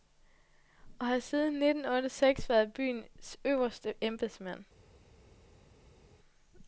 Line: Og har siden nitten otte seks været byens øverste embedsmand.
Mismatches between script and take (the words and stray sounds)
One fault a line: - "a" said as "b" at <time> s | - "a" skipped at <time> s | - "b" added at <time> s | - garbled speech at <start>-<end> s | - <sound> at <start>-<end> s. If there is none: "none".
none